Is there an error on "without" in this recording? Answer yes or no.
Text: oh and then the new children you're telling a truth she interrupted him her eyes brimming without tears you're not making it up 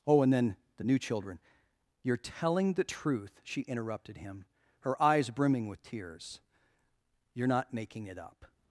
yes